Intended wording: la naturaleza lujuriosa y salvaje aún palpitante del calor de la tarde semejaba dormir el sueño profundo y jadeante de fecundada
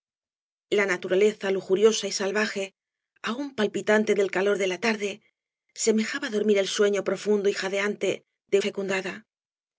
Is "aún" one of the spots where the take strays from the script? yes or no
no